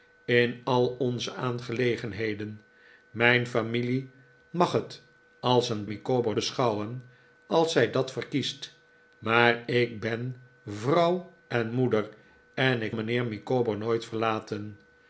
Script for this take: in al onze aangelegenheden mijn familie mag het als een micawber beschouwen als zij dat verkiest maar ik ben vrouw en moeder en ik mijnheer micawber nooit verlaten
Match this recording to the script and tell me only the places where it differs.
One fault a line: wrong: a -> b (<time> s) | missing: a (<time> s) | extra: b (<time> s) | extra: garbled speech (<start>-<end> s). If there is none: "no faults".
no faults